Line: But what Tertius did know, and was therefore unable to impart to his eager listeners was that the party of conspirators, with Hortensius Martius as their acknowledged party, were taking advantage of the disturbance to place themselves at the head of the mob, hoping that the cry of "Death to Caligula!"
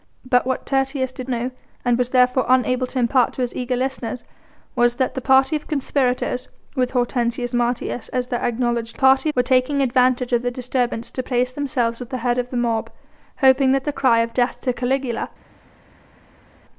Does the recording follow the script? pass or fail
pass